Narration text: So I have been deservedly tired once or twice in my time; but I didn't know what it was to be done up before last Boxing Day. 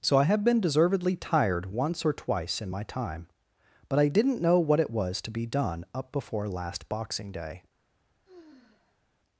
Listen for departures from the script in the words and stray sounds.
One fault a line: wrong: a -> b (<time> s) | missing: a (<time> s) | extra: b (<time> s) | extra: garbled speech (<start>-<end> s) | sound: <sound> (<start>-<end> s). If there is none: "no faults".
sound: sigh (8.2-9.1 s)